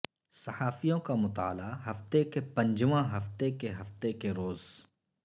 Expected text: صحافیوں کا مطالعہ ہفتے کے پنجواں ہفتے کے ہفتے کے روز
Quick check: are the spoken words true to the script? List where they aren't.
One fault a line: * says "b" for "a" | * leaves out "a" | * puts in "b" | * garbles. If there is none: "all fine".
all fine